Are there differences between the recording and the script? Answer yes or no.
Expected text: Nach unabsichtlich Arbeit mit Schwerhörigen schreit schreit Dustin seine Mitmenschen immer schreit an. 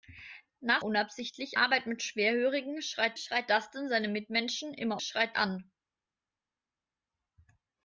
no